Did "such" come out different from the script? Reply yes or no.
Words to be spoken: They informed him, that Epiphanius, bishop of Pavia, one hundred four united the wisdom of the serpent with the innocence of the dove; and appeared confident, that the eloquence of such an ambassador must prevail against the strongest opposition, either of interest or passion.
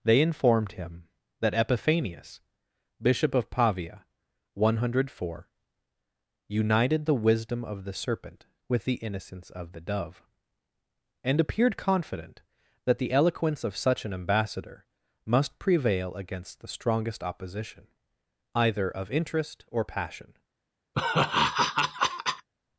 no